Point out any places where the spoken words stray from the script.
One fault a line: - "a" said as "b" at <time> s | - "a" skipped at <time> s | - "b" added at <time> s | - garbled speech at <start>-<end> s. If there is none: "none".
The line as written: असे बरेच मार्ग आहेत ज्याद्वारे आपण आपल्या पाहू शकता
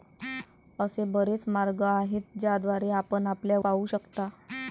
none